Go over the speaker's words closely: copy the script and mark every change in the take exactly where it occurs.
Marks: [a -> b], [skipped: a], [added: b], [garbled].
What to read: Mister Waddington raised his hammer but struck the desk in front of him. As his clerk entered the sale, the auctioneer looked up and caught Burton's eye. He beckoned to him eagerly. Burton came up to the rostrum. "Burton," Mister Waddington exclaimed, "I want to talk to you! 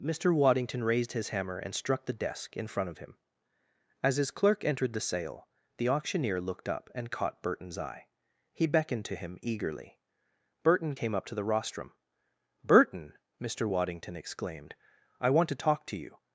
Mister Waddington raised his hammer [but -> and] struck the desk in front of him. As his clerk entered the sale, the auctioneer looked up and caught Burton's eye. He beckoned to him eagerly. Burton came up to the rostrum. "Burton," Mister Waddington exclaimed, "I want to talk to you!